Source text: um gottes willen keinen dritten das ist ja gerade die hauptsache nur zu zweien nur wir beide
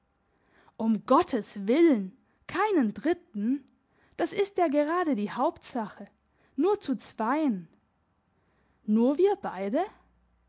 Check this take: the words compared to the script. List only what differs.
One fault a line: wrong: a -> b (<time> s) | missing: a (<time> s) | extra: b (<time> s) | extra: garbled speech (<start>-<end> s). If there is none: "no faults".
no faults